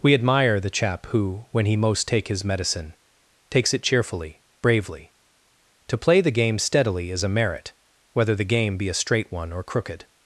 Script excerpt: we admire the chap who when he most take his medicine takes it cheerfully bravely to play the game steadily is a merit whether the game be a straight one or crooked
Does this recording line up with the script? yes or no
yes